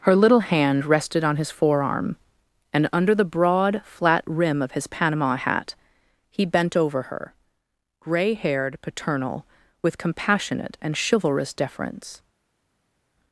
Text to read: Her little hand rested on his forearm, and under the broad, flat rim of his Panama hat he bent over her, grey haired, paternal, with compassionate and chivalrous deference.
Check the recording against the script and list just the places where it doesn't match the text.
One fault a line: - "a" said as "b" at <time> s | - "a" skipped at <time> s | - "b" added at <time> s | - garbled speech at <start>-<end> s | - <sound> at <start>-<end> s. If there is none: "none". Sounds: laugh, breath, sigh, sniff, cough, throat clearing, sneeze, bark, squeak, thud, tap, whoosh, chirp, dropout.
none